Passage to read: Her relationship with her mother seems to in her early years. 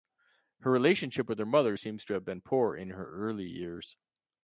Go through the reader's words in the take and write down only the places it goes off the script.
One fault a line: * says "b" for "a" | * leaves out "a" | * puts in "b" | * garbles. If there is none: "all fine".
* puts in "have been poor"